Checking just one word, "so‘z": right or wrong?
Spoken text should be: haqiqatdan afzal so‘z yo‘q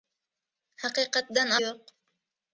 wrong